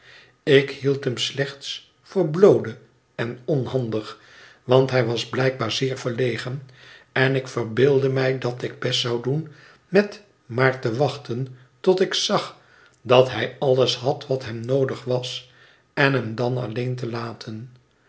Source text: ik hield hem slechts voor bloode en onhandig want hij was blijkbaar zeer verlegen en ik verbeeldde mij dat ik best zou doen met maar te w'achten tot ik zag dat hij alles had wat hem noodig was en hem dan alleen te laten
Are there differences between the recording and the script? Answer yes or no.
no